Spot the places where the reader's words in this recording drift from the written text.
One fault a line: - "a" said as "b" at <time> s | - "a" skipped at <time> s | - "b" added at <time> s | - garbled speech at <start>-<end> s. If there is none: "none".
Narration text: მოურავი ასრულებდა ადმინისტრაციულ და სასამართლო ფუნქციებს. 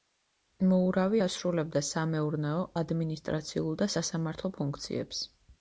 - "სამეურნეო" added at 1.9 s